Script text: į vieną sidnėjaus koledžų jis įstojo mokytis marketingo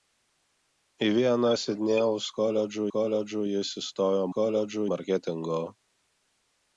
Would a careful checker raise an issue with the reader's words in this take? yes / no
yes